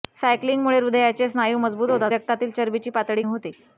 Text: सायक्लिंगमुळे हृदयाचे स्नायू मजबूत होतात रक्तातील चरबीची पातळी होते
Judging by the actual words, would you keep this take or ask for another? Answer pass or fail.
pass